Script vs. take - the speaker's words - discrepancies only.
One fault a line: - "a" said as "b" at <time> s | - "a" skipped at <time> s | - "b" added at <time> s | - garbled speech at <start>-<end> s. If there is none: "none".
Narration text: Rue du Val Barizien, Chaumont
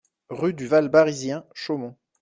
none